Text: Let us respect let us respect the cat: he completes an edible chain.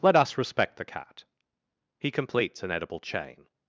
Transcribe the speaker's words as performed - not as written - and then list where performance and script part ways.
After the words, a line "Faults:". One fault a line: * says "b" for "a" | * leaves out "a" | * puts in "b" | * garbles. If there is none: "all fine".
Let us respect the cat: he completes an edible chain.
Faults:
* leaves out "let us respect"